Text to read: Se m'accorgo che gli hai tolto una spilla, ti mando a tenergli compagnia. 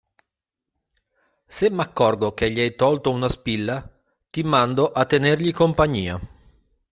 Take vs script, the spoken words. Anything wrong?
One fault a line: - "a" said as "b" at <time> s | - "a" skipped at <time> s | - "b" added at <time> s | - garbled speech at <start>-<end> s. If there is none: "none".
none